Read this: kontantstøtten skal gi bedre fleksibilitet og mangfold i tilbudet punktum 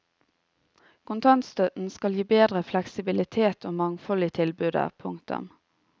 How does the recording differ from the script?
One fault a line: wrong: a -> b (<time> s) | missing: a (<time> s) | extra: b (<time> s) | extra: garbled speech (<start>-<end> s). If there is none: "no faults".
no faults